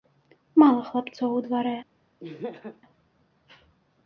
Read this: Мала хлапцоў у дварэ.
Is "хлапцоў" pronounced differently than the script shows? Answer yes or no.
no